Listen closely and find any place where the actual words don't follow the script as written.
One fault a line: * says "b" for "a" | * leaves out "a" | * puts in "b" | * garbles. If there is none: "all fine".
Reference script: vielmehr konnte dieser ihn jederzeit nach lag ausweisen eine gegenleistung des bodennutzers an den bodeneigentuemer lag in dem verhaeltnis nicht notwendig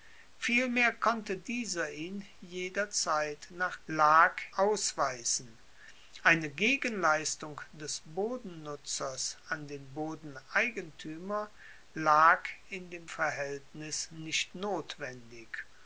all fine